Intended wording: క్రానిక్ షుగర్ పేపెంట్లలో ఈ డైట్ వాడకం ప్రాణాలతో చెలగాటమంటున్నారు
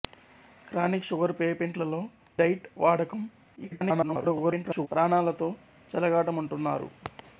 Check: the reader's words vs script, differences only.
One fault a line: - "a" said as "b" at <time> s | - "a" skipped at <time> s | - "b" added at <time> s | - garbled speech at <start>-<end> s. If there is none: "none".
- "ఈ" skipped at 2.0 s
- garbled speech at 3.6-4.9 s